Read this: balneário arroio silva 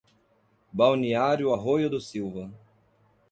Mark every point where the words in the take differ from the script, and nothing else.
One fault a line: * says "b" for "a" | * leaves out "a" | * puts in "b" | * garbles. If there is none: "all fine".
* puts in "do"